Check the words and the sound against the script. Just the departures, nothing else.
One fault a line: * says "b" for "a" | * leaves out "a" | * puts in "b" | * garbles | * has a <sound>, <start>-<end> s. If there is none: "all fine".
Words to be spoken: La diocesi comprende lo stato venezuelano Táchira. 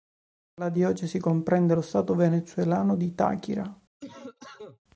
* puts in "di"
* has a cough, 4.0-4.8 s